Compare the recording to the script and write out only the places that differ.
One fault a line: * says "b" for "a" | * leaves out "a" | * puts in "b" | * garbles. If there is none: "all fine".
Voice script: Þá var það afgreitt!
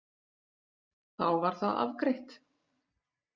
all fine